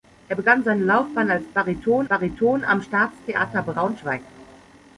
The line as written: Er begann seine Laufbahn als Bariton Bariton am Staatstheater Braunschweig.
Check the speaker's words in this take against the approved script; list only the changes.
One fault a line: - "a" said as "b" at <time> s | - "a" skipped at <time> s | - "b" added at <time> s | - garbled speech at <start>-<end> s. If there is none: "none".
none